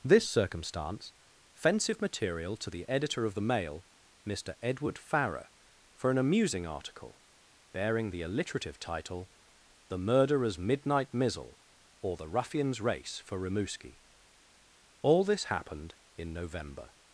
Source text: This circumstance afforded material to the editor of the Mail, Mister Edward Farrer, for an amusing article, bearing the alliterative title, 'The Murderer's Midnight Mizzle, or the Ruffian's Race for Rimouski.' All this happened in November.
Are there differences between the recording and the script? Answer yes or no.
yes